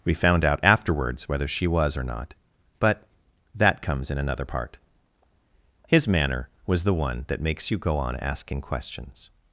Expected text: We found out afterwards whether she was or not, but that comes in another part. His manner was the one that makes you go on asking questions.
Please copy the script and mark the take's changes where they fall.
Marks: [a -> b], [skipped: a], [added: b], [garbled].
We found out afterwards whether she was or not, but that comes in another part. His manner was the one that makes you go on asking questions.